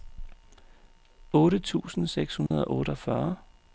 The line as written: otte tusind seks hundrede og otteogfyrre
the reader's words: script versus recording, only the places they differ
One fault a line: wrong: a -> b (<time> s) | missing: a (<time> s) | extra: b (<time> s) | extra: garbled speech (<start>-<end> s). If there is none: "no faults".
no faults